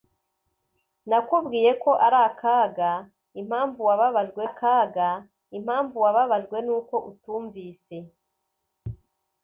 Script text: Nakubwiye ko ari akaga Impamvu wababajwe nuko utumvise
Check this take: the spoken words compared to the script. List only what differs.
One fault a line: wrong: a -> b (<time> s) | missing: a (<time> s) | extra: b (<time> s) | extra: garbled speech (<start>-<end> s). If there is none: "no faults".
extra: akaga Impamvu wababajwe (4.5 s)